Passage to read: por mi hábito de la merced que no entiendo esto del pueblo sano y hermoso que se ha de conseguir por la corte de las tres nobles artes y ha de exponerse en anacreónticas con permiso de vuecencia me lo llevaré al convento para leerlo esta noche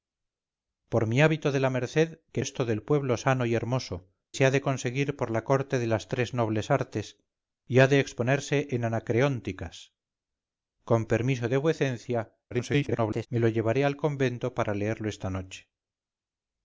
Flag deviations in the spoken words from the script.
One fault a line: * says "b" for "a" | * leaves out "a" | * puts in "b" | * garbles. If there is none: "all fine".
* leaves out "no entiendo"
* leaves out "que"
* garbles